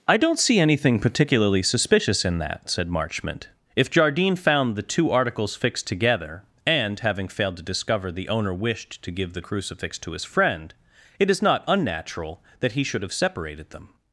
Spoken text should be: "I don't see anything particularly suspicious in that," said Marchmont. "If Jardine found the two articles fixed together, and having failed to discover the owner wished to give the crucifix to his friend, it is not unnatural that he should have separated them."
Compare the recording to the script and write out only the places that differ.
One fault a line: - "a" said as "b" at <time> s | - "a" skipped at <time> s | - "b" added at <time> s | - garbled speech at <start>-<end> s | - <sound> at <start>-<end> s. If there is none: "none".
none